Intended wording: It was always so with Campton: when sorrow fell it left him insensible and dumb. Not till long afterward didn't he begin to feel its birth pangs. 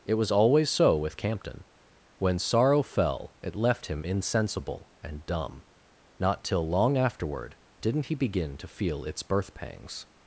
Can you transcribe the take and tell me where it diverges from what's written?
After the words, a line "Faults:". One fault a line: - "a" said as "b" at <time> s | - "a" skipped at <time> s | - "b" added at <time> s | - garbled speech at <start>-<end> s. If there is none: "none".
It was always so with Campton: when sorrow fell it left him insensible and dumb. Not till long afterward didn't he begin to feel its birth pangs.
Faults:
none